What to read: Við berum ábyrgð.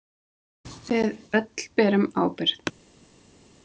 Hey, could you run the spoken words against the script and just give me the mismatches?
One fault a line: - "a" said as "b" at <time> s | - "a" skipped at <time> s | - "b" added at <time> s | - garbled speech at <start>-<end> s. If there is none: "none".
- "öll" added at 1.4 s